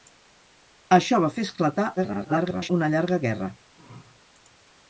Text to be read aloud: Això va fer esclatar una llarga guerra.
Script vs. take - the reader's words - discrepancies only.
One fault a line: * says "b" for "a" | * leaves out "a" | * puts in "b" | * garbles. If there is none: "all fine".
* garbles